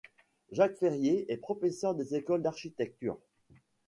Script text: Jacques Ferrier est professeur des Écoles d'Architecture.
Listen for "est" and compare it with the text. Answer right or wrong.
right